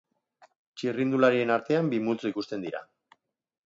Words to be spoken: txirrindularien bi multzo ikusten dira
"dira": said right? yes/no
yes